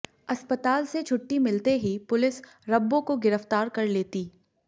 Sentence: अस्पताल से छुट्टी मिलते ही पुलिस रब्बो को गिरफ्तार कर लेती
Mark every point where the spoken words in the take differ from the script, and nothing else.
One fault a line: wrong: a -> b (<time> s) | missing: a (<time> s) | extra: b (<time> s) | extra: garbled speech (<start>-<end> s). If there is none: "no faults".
no faults